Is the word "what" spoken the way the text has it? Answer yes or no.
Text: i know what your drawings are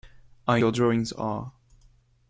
no